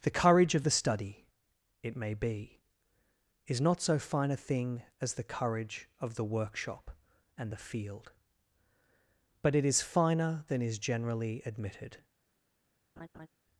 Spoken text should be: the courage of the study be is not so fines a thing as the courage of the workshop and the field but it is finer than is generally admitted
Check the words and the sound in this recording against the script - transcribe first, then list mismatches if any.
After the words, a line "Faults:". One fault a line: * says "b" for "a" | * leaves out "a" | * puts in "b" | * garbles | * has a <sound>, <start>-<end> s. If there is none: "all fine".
the courage of the study it may be is not so fine a thing as the courage of the workshop and the field but it is finer than is generally admitted
Faults:
* puts in "it may"
* says "fine" for "fines"
* has a laugh, 13.0-13.3 s